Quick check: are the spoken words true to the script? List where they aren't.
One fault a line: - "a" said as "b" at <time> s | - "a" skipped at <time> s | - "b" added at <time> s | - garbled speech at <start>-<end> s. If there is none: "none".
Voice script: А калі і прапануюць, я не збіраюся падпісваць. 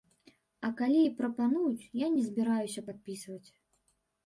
none